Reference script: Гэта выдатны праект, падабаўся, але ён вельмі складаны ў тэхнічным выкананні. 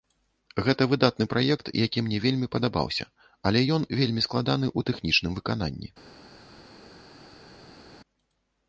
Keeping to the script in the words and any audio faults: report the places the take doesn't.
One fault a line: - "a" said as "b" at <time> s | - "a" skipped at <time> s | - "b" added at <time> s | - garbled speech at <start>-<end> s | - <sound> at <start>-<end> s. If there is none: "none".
- "які мне вельмі" added at 1.9 s